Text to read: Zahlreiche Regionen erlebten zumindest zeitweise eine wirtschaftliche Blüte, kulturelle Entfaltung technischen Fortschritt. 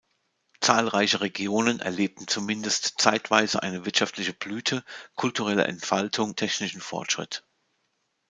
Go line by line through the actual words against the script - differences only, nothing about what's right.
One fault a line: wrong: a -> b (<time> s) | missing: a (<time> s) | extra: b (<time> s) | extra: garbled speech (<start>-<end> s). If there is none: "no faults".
no faults